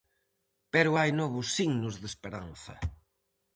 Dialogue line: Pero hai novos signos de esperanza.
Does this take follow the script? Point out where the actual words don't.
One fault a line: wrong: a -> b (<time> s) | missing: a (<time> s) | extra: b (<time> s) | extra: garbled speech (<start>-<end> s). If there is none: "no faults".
no faults